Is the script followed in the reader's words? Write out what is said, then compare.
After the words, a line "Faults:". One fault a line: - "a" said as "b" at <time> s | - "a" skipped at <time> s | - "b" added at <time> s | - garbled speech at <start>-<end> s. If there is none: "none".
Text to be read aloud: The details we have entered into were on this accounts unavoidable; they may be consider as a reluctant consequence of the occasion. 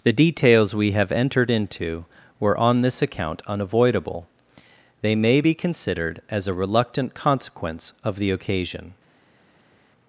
The details we have entered into were on this account unavoidable; they may be considered as a reluctant consequence of the occasion.
Faults:
- "accounts" said as "account" at 3.0 s
- "consider" said as "considered" at 5.5 s